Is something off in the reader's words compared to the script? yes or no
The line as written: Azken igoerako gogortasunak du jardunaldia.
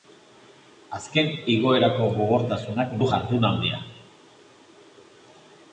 no